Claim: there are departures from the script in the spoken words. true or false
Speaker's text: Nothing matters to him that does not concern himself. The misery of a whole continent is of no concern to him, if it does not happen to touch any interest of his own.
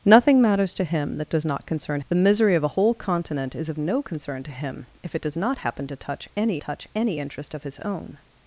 true